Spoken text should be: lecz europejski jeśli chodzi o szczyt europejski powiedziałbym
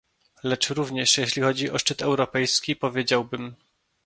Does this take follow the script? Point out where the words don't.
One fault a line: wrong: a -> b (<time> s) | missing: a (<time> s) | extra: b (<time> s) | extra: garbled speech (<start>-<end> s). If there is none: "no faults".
wrong: europejski -> również (0.7 s)